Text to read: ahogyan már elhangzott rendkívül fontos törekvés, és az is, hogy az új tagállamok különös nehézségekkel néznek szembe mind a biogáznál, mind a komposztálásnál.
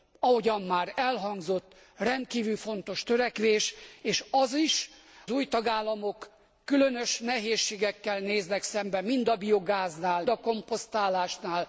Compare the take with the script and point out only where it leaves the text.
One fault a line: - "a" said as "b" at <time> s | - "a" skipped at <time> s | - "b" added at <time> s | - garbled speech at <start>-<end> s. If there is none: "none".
- "hogy az" skipped at 4.9 s
- "mind" skipped at 10.2 s